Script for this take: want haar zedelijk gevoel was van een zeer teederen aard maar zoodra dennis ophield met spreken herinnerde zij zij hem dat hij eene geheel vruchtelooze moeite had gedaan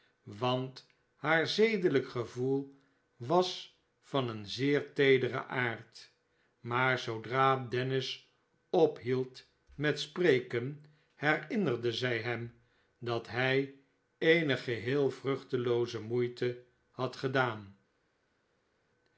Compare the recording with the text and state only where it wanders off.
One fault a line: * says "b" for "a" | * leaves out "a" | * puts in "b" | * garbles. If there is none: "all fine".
* leaves out "zij"